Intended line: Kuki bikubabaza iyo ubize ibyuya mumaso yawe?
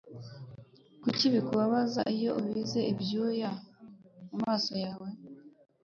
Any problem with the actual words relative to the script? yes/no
no